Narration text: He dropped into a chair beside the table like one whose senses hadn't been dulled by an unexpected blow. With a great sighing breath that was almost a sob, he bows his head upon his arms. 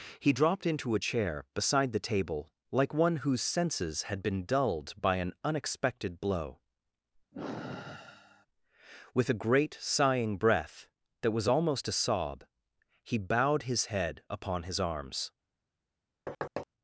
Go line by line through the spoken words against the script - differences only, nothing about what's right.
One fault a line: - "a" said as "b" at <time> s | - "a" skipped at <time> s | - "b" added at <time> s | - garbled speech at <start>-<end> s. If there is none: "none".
- "hadn't" said as "had" at 4.0 s
- "bows" said as "bowed" at 13.2 s